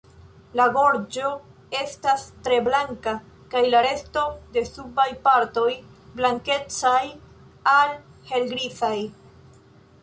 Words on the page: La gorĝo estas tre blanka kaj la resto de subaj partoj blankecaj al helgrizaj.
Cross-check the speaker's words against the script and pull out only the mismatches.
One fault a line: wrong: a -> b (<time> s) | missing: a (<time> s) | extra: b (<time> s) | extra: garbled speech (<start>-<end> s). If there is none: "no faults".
no faults